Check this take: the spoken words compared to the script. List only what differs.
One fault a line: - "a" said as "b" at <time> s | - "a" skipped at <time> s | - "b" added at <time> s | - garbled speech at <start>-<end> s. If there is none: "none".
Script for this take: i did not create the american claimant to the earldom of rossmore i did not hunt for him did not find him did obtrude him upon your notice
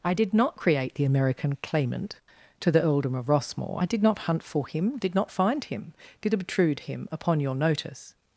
none